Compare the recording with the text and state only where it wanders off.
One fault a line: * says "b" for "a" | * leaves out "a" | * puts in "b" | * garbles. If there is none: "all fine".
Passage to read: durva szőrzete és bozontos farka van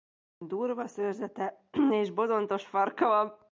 all fine